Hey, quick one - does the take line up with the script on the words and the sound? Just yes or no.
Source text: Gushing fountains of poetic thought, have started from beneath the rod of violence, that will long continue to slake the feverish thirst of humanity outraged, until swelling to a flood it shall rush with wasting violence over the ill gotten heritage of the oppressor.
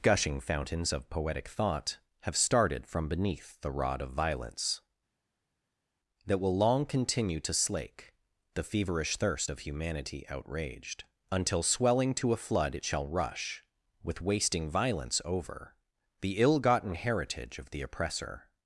yes